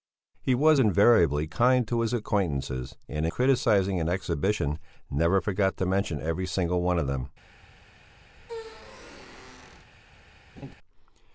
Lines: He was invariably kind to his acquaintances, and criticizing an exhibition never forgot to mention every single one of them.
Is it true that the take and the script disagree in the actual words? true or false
false